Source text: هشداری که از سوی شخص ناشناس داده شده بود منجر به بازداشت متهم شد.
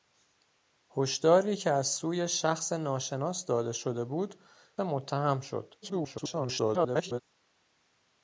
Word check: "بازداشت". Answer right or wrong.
wrong